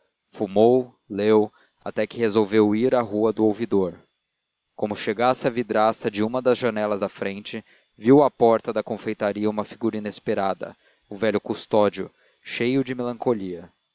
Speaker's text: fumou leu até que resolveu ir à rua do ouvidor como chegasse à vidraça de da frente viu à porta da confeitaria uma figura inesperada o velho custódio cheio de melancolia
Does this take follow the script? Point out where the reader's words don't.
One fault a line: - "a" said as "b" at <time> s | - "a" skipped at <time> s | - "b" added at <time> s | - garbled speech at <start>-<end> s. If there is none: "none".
- "uma das janelas" added at 6.2 s